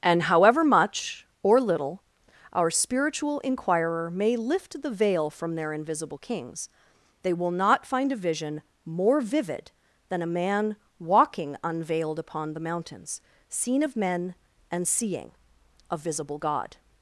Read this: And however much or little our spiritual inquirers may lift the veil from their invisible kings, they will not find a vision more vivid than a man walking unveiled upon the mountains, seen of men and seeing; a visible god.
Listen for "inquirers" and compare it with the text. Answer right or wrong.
wrong